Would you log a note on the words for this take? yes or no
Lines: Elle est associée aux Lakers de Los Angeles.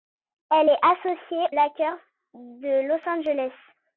yes